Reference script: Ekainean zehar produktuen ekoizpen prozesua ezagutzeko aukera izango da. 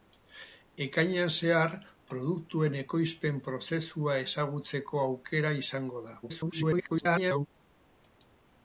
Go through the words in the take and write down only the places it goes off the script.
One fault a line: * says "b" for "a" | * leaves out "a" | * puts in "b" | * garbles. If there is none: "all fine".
* garbles